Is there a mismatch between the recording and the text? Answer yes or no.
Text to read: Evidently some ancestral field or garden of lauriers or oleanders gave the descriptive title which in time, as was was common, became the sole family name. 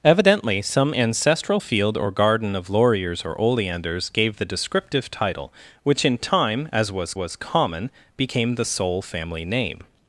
no